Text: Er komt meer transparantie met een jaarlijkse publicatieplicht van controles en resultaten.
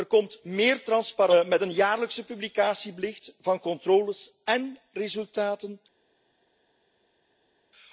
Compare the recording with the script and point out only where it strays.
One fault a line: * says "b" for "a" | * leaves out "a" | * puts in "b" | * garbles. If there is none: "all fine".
all fine